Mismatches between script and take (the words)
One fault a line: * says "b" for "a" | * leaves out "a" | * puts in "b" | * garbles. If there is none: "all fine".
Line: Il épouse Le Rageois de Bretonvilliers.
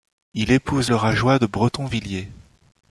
all fine